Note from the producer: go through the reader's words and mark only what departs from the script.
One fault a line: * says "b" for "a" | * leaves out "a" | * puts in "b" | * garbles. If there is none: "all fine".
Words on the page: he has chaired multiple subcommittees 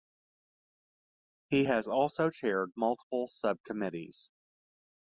* puts in "also"